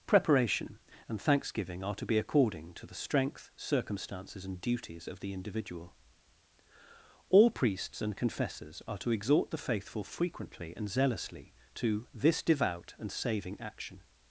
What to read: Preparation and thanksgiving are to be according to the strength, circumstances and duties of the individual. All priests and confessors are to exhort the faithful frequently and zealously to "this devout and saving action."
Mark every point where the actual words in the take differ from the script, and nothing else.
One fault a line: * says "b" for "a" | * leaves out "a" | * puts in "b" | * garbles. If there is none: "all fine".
all fine